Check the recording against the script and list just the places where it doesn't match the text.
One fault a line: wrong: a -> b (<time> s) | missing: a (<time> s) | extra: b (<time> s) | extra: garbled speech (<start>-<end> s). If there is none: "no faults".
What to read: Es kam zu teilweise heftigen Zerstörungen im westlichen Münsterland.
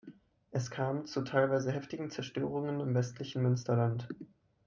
no faults